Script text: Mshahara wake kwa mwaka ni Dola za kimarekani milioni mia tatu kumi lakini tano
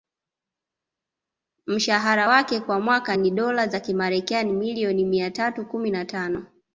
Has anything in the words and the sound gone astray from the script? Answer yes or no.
yes